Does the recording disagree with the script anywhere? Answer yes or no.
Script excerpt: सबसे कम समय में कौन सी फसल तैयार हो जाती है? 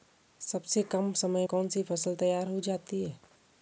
yes